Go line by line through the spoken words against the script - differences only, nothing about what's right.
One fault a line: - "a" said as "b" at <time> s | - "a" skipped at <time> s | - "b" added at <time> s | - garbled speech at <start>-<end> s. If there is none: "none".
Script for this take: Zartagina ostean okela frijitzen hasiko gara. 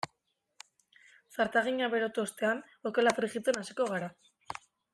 - "berotu" added at 1.9 s